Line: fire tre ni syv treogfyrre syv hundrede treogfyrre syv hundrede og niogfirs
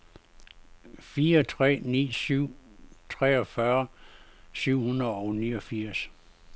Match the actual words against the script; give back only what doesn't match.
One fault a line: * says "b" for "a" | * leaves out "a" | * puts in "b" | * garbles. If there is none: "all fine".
* leaves out "treogfyrre syv hundrede"